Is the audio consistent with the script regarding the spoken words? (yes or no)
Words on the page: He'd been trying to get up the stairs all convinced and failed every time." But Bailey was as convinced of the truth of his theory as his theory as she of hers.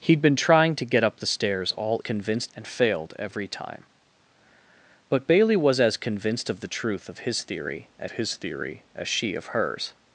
yes